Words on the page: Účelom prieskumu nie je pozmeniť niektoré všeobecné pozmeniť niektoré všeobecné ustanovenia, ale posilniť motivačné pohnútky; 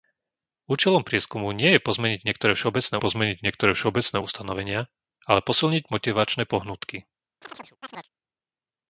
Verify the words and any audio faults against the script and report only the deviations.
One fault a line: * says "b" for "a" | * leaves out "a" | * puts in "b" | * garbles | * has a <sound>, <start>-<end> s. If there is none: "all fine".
* has a chirp, 7.4-8.1 s